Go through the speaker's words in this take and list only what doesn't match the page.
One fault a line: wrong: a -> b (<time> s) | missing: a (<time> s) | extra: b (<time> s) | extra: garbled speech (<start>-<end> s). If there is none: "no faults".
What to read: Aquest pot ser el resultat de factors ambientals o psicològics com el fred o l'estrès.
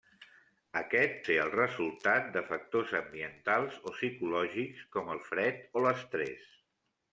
missing: pot (1.2 s)